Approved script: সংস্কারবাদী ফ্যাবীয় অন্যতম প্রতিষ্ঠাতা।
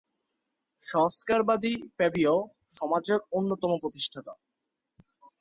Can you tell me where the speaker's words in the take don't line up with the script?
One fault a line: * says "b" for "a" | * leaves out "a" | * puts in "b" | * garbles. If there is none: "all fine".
* puts in "সমাজের"